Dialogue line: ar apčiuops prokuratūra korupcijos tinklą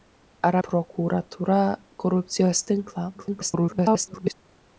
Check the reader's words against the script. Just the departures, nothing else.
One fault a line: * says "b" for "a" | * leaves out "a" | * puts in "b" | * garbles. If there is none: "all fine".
* leaves out "apčiuops"
* garbles